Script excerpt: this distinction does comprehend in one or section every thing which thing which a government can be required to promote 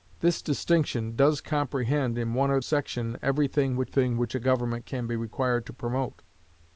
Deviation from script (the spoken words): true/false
false